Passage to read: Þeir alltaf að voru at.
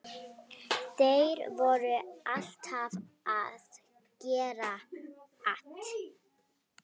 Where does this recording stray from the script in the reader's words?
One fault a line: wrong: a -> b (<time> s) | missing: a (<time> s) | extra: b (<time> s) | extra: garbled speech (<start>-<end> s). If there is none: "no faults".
extra: voru (1.6 s)
wrong: voru -> gera (4.3 s)